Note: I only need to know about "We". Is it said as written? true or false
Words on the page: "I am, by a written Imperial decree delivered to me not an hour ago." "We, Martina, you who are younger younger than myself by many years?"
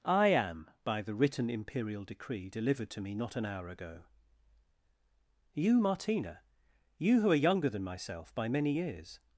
false